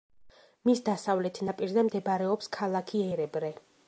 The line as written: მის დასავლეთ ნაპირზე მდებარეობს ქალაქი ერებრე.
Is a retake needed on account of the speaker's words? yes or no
no